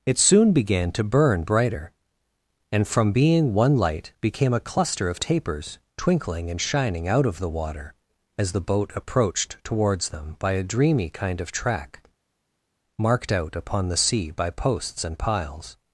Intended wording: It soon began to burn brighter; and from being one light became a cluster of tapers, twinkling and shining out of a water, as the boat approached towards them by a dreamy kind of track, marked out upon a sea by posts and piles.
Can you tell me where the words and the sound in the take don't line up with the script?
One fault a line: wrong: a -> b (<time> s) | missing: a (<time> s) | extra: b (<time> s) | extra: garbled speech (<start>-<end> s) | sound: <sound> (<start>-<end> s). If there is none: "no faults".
wrong: a -> the (7.4 s)
wrong: a -> the (13.9 s)